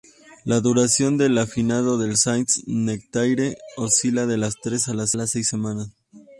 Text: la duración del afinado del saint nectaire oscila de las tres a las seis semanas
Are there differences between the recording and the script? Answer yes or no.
yes